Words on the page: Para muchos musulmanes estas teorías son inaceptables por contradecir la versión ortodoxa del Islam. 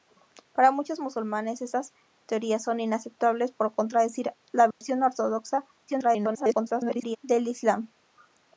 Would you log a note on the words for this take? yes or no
yes